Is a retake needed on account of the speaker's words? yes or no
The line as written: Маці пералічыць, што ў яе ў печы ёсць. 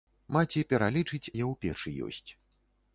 yes